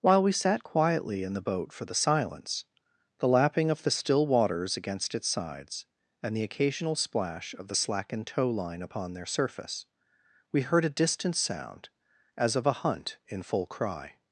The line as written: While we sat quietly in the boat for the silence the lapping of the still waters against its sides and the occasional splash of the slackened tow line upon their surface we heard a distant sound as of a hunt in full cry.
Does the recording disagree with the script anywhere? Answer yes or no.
no